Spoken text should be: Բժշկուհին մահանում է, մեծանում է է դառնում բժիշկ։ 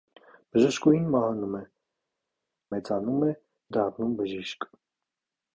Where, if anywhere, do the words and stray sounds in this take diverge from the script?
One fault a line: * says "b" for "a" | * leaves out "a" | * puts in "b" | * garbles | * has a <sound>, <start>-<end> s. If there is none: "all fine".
all fine